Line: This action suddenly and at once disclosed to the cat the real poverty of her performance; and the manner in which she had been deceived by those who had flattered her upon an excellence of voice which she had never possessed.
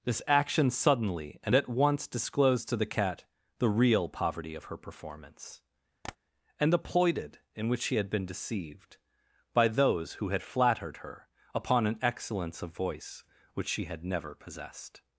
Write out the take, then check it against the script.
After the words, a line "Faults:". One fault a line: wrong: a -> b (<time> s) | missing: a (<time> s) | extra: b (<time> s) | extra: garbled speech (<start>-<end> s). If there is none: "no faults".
This action suddenly and at once disclosed to the cat the real poverty of her performance; and the ploited in which she had been deceived by those who had flattered her upon an excellence of voice which she had never possessed.
Faults:
wrong: manner -> ploited (6.8 s)